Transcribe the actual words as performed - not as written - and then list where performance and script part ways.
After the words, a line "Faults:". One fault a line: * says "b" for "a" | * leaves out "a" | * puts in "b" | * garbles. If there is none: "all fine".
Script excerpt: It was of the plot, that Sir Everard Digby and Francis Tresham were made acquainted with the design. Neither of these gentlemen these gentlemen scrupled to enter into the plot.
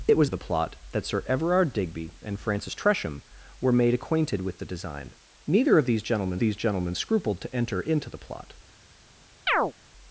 It was of the plot, that Sir Everard Digby and Francis Tresham were made acquainted with the design. Neither of these gentlemen these gentlemen scrupled to enter into the plot.
Faults:
all fine